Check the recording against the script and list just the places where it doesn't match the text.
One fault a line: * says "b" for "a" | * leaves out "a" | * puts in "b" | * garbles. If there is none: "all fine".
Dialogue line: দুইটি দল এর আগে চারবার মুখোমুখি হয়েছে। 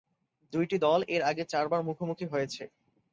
all fine